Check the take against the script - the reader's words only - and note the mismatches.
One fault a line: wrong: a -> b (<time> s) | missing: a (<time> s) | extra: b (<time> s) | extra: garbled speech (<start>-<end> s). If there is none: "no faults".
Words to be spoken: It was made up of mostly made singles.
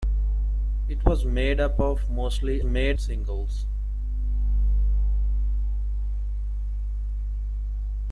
no faults